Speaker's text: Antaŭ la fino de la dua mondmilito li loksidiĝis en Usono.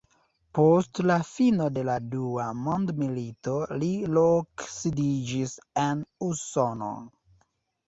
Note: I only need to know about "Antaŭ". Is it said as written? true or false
false